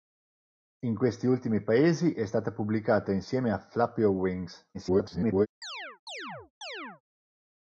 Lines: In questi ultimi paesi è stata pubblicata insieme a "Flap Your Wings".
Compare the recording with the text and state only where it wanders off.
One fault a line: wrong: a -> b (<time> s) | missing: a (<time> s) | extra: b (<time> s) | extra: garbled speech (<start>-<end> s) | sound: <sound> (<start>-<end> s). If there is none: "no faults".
extra: garbled speech (4.7-5.5 s)
sound: chirp (5.6-7.0 s)